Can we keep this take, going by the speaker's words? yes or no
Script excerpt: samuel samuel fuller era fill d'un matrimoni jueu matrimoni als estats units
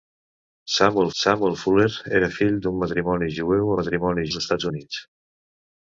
yes